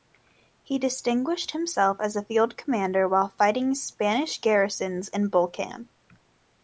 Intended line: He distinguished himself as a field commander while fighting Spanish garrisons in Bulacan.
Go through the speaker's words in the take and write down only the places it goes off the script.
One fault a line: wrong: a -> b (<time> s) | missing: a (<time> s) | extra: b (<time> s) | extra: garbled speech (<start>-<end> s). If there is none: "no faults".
no faults